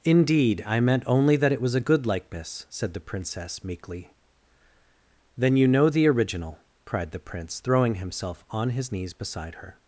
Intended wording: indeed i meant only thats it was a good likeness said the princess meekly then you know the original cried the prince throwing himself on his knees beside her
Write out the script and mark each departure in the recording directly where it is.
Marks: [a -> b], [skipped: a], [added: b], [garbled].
indeed i meant only [thats -> that] it was a good likeness said the princess meekly then you know the original cried the prince throwing himself on his knees beside her